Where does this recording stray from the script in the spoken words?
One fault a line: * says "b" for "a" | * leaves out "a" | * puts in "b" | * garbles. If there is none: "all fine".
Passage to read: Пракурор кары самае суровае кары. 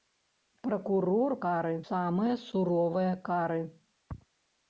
all fine